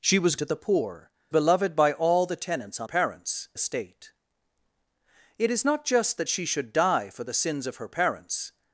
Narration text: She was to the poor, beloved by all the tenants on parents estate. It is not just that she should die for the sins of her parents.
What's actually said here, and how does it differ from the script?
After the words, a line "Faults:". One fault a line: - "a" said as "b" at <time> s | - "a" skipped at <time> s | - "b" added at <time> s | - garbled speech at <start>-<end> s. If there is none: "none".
She was to the poor, beloved by all the tenants on parents estate. It is not just that she should die for the sins of her parents.
Faults:
none